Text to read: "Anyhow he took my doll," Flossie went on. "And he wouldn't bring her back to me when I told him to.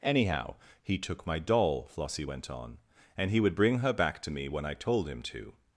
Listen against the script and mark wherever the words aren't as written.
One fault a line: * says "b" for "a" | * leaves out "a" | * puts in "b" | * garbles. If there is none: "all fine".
* says "would" for "wouldn't"